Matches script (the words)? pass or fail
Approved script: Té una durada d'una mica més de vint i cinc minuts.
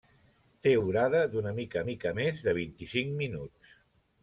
fail